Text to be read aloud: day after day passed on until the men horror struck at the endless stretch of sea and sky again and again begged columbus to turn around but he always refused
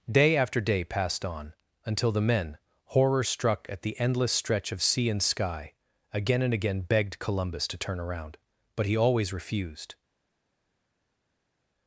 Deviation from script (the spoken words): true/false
false